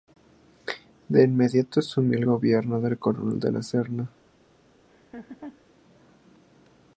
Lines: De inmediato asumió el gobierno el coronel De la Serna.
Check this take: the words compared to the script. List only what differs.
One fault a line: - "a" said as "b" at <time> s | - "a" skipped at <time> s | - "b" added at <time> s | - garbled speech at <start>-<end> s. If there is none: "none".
none